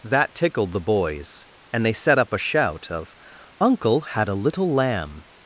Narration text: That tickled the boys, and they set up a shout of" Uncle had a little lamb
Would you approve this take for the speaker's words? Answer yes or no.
yes